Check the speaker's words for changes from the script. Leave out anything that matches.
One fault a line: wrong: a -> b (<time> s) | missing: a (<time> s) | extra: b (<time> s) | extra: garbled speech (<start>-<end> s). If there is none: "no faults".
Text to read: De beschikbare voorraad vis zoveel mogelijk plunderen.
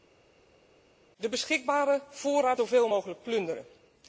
missing: vis (2.6 s)